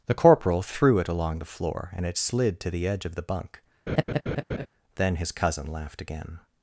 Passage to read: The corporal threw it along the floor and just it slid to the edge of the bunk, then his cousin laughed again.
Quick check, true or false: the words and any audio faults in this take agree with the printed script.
false